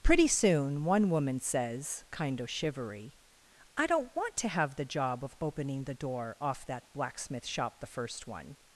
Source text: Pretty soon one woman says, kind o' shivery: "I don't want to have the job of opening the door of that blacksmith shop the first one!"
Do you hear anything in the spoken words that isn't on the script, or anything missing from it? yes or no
yes